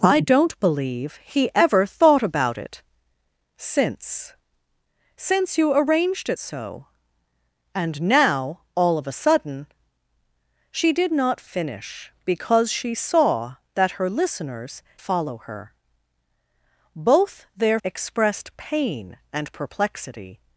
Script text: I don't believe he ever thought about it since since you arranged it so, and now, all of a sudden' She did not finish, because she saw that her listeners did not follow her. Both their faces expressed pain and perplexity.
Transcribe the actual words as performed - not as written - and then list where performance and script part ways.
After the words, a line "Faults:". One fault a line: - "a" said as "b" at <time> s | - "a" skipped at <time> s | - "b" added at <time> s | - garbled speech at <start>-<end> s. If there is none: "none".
I don't believe he ever thought about it since since you arranged it so, and now, all of a sudden' She did not finish, because she saw that her listeners follow her. Both their expressed pain and perplexity.
Faults:
- "did not" skipped at 14.8 s
- "faces" skipped at 17.8 s